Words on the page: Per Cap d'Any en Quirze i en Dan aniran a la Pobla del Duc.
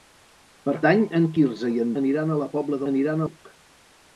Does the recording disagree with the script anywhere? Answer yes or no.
yes